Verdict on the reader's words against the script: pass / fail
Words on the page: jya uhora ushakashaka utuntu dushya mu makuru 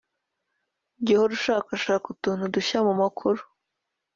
pass